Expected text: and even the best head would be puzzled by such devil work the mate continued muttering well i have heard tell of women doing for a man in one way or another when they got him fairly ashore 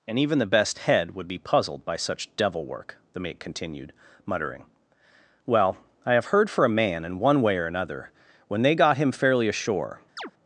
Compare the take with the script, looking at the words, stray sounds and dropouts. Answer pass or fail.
fail